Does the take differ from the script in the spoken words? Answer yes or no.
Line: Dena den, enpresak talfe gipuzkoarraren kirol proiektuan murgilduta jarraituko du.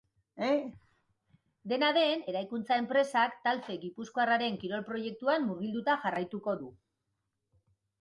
yes